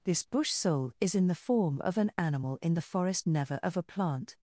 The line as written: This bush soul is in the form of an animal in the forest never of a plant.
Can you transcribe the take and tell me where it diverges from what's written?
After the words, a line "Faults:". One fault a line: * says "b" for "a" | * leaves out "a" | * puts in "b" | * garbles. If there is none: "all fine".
This bush soul is in the form of an animal in the forest never of a plant.
Faults:
all fine